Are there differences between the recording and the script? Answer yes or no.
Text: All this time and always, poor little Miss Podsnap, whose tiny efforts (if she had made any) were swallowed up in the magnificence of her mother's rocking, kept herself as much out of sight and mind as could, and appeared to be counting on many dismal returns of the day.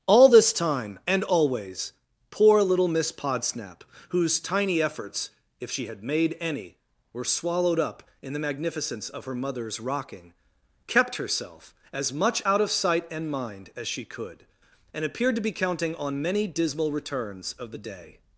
yes